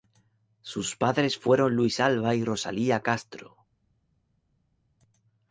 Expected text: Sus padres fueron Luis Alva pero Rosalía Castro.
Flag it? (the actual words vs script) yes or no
yes